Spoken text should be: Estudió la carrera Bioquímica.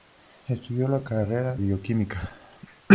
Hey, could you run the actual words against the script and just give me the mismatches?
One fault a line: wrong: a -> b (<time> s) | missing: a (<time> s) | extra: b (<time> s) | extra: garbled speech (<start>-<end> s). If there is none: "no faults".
no faults